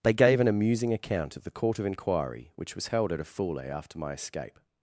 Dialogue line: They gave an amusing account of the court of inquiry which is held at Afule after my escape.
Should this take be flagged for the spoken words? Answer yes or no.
yes